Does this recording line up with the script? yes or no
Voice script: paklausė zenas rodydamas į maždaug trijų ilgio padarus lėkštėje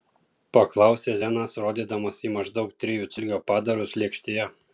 yes